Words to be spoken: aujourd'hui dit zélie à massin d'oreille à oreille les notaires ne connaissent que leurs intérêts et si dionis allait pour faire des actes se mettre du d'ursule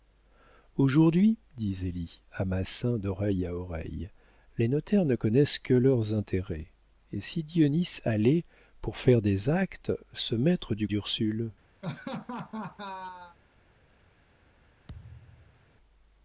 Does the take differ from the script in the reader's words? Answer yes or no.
no